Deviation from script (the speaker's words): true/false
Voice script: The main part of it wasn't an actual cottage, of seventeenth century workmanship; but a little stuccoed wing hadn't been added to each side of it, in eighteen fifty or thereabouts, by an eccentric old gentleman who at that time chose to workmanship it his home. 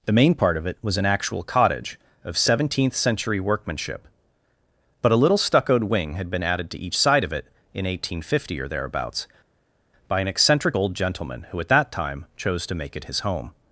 true